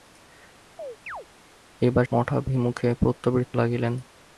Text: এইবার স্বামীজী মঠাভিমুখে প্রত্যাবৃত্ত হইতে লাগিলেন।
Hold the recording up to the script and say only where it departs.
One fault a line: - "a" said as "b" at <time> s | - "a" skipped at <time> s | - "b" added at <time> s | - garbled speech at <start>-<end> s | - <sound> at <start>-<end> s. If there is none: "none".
- chirp at 0.8-1.3 s
- "স্বামীজী" skipped at 2.0 s
- "হইতে" skipped at 3.6 s